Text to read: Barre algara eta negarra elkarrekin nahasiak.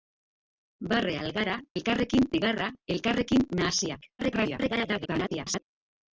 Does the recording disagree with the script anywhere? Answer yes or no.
yes